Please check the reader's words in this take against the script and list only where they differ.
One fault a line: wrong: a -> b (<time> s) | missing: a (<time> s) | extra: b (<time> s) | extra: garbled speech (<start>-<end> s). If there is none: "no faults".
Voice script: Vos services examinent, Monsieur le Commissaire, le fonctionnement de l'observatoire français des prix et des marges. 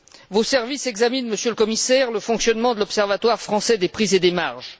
no faults